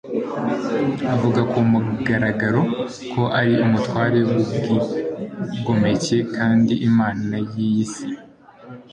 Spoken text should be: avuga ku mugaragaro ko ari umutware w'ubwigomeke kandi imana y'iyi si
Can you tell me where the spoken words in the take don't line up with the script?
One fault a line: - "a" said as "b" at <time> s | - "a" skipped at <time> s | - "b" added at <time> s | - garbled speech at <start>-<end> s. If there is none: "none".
none